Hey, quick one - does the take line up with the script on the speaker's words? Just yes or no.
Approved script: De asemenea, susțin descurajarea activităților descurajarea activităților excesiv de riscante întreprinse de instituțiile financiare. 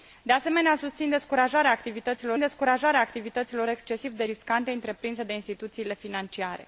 yes